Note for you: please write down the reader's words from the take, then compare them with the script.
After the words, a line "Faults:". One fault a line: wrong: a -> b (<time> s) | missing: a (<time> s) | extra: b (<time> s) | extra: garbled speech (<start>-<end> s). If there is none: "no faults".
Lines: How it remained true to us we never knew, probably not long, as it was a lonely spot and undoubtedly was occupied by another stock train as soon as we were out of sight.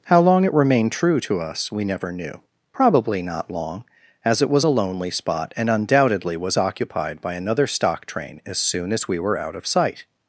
How long it remained true to us we never knew, probably not long, as it was a lonely spot and undoubtedly was occupied by another stock train as soon as we were out of sight.
Faults:
extra: long (0.2 s)